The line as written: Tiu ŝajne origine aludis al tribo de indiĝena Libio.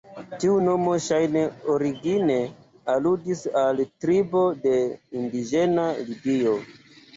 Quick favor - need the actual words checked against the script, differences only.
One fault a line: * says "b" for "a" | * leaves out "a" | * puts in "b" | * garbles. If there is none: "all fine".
* puts in "nomo"